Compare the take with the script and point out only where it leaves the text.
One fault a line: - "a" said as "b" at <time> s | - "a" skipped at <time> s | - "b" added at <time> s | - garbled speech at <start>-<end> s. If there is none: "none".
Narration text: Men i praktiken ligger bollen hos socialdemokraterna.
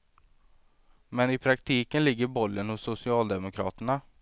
none